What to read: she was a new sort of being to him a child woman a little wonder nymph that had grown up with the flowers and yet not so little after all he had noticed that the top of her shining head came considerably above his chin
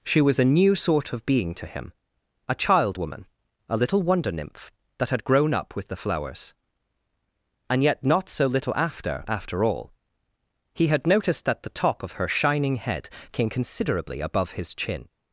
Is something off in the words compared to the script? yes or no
yes